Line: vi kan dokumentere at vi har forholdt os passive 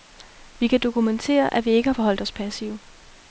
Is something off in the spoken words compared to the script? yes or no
yes